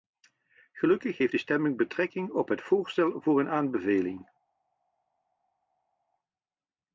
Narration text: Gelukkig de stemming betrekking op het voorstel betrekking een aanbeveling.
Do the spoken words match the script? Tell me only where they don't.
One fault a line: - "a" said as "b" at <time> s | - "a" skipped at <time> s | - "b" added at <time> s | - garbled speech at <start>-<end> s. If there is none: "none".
- "heeft" added at 1.2 s
- "betrekking" said as "voor" at 3.2 s